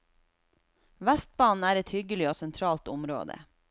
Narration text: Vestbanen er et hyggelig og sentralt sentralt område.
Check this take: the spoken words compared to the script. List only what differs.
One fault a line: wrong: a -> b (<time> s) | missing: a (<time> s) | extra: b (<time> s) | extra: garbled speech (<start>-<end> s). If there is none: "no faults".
missing: sentralt (2.9 s)